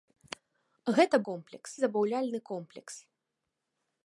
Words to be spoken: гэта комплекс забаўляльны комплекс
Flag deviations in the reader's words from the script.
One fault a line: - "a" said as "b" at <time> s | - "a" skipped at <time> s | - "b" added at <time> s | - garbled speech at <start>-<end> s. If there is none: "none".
none